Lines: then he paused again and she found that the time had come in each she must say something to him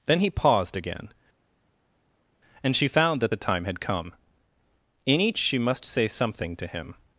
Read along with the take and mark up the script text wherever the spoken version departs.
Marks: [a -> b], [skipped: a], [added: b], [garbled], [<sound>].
then he paused again and she found that the time had come in each she must say something to him